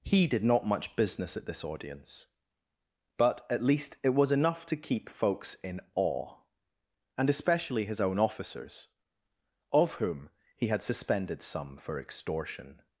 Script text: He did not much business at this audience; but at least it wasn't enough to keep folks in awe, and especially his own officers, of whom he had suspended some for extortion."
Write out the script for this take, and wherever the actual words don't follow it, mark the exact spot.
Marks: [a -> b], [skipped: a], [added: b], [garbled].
He did not much business at this audience; but at least it [wasn't -> was] enough to keep folks in awe, and especially his own officers, of whom he had suspended some for extortion."